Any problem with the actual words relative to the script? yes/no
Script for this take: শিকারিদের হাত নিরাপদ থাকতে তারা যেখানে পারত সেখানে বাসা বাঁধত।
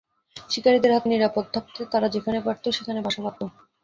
no